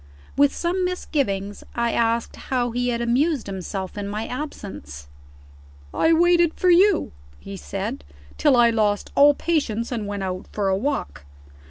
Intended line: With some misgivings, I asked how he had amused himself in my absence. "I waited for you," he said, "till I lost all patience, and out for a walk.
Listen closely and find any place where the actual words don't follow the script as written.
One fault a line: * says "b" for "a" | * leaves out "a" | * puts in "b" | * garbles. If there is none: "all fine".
* puts in "went"